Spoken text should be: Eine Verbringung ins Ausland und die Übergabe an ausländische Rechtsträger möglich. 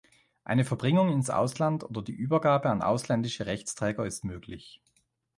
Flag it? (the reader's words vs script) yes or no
yes